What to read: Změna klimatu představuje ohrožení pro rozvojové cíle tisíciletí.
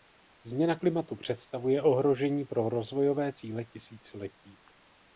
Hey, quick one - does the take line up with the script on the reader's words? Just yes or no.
yes